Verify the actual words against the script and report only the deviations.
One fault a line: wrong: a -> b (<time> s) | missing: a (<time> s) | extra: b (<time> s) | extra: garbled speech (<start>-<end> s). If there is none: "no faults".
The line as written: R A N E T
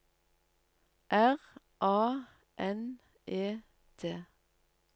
no faults